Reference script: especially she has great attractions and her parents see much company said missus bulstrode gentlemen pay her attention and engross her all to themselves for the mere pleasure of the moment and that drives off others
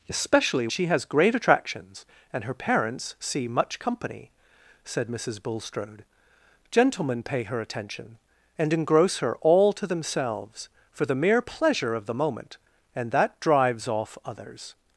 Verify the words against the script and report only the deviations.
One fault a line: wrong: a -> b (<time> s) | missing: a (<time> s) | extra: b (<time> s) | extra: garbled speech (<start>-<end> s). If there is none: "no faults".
no faults